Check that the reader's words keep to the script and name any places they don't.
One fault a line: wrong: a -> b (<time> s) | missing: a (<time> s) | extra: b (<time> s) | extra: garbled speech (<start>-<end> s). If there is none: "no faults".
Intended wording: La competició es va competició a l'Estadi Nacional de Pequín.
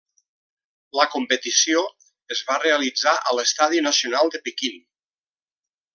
wrong: competició -> realitzar (2.6 s)